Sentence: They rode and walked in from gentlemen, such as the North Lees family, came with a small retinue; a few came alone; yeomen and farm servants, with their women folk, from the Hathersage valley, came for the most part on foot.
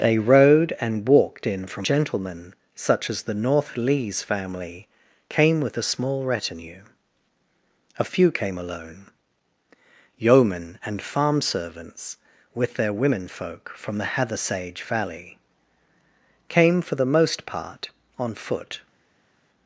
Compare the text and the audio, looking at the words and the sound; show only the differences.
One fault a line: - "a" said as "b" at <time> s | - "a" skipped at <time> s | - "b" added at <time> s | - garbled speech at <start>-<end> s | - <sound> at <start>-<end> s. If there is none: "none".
none